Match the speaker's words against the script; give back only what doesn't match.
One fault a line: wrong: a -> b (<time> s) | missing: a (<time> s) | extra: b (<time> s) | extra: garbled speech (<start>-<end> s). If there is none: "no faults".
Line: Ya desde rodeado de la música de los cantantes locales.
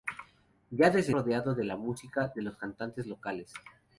no faults